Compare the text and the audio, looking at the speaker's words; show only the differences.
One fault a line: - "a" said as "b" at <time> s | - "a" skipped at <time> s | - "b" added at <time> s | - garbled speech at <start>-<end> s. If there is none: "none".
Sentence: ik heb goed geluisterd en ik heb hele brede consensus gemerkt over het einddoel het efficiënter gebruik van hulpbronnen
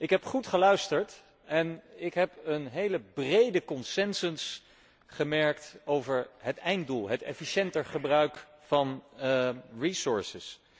- "een" added at 2.4 s